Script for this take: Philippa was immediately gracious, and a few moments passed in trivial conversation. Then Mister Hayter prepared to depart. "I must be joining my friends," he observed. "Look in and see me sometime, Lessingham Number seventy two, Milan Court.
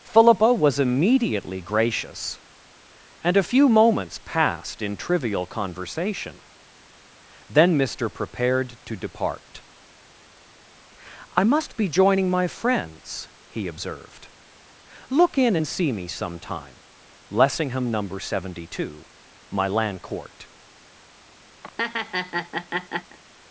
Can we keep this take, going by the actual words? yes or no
no